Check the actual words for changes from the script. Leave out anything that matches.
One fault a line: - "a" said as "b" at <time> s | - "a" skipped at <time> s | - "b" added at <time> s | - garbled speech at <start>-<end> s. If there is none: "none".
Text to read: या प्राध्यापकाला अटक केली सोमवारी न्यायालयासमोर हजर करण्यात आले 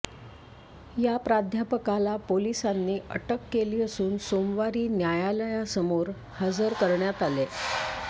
- "पोलिसांनी" added at 2.3 s
- "असून" added at 3.8 s